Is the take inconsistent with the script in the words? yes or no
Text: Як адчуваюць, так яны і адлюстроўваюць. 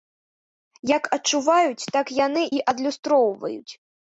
no